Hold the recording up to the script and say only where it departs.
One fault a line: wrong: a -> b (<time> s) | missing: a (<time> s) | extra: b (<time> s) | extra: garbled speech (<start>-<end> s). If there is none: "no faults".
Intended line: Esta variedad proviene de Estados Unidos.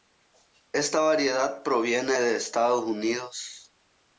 no faults